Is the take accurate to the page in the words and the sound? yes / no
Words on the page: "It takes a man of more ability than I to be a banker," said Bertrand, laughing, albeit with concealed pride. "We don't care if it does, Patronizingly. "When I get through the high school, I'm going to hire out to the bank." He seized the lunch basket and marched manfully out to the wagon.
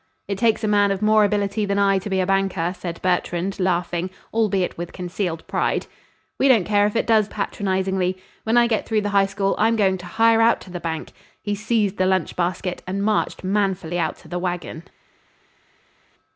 yes